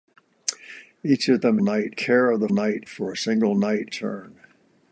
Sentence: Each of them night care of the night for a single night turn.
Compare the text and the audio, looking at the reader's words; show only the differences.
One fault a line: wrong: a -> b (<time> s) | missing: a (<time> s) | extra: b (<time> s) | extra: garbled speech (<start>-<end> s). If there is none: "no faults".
no faults